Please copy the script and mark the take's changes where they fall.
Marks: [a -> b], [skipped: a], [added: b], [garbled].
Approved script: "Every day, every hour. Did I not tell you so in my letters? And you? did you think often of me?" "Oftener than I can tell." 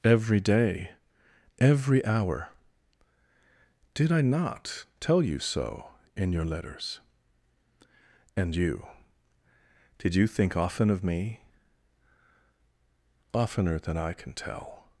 "Every day, every hour. Did I not tell you so in [my -> your] letters? And you? did you think often of me?" "Oftener than I can tell."